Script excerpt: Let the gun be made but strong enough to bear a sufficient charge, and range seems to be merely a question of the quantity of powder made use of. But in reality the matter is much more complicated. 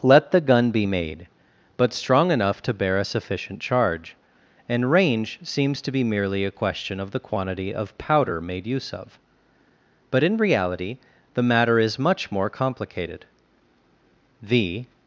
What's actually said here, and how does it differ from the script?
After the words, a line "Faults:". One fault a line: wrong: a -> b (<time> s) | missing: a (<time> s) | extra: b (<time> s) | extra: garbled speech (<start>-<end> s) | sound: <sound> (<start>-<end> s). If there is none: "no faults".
Let the gun be made but strong enough to bear a sufficient charge, and range seems to be merely a question of the quantity of powder made use of. But in reality the matter is much more complicated. The
Faults:
extra: The (14.4 s)